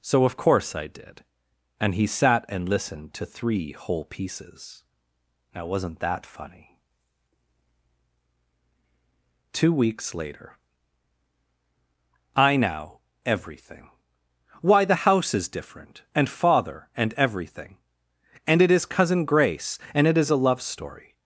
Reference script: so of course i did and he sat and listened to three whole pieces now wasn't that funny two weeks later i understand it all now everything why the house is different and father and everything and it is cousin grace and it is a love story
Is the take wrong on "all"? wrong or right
wrong